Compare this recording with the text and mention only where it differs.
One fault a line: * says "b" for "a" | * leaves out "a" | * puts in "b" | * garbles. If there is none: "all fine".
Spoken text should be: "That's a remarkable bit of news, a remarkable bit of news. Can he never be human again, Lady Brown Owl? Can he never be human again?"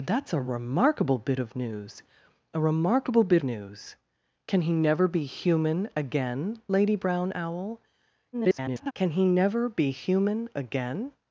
* leaves out "of"
* garbles